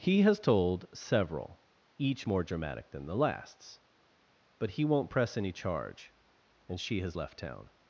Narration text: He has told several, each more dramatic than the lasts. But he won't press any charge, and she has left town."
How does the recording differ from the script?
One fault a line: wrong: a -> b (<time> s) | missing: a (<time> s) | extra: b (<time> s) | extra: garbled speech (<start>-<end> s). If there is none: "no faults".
no faults